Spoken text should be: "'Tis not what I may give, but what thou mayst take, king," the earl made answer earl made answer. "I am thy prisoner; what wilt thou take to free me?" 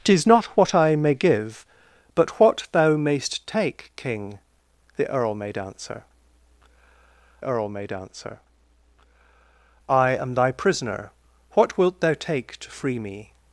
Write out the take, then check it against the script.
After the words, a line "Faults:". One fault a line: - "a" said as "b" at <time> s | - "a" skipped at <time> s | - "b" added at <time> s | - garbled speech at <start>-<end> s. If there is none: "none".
"'Tis not what I may give, but what thou mayst take, king," the earl made answer earl made answer. "I am thy prisoner; what wilt thou take to free me?"
Faults:
none